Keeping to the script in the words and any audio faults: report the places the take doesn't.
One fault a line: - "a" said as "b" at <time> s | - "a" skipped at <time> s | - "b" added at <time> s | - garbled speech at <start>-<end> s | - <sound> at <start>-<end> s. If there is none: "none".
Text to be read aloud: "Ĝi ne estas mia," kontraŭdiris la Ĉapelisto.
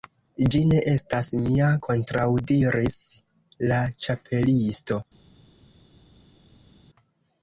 none